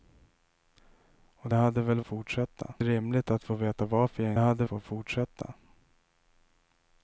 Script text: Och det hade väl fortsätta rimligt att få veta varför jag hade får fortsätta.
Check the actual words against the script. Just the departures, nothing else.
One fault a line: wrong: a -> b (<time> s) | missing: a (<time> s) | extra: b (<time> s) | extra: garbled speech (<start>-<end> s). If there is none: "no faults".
no faults